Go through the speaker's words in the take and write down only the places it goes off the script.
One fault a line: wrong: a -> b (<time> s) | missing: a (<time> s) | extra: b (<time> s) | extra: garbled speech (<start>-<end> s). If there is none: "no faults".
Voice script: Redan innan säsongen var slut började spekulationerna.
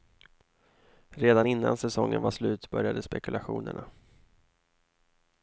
no faults